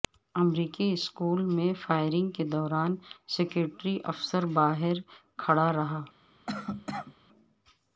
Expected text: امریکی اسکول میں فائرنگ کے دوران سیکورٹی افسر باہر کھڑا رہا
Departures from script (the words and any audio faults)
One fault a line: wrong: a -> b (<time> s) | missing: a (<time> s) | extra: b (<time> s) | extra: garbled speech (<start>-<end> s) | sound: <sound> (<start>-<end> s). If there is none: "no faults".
sound: cough (6.5-7.2 s)